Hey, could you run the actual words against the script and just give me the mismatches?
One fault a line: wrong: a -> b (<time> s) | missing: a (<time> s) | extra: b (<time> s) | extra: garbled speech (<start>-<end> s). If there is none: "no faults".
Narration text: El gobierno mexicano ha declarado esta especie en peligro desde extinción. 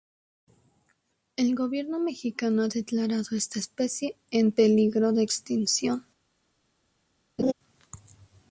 wrong: desde -> de (5.1 s)